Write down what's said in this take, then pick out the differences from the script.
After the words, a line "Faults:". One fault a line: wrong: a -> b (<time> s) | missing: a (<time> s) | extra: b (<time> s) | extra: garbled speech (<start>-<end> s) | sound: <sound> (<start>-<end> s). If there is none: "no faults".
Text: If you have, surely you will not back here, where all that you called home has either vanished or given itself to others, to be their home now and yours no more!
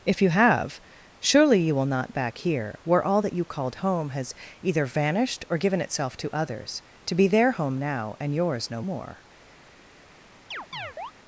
If you have, surely you will not back here, where all that you called home has either vanished or given itself to others, to be their home now and yours no more!
Faults:
sound: chirp (10.5-11.1 s)